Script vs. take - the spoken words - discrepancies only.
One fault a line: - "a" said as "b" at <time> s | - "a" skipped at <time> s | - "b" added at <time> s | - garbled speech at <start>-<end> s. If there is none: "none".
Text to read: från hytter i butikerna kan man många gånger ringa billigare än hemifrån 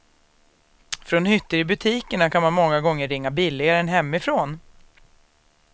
none